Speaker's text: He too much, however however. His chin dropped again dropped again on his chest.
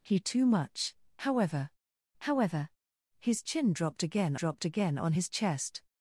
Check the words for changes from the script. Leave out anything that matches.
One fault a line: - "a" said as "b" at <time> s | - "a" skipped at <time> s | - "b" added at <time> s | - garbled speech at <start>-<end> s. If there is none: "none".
none